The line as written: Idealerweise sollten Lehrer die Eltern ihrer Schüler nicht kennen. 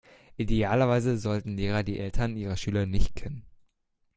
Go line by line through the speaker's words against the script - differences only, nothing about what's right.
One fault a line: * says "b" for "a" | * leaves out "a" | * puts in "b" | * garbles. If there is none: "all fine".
all fine